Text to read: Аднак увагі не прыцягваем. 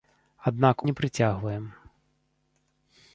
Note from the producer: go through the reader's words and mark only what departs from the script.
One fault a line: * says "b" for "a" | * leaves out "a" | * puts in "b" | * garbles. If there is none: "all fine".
* leaves out "увагі"